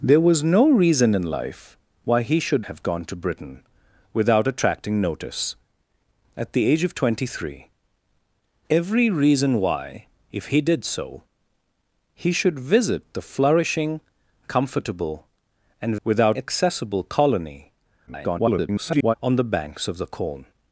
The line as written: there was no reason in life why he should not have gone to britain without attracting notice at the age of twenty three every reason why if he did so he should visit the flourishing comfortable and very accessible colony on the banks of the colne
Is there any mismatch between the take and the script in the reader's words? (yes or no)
yes